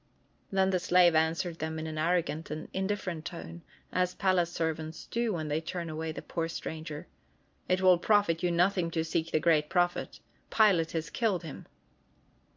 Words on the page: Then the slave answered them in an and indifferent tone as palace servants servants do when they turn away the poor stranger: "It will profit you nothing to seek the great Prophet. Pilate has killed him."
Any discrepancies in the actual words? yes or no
yes